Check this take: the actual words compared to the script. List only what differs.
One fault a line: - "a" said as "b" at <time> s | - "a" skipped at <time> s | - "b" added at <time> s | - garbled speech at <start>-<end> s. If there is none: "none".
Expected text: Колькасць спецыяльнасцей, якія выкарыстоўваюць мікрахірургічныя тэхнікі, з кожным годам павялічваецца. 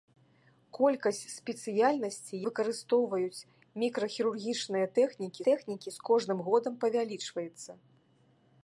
- "якія" skipped at 2.4 s
- "тэхнікі" added at 5.5 s